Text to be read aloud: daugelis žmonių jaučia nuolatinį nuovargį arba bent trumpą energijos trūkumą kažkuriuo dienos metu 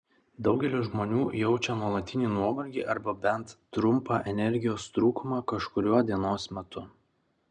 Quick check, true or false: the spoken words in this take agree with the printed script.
true